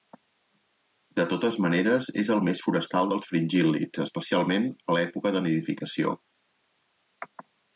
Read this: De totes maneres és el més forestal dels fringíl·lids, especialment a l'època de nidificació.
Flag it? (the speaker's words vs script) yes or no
no